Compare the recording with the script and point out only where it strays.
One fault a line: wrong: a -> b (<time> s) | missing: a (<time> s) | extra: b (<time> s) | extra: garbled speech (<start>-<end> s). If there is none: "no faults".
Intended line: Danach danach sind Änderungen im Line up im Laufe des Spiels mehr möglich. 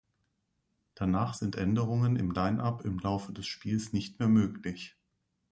missing: danach (1.4 s)
extra: nicht (3.9 s)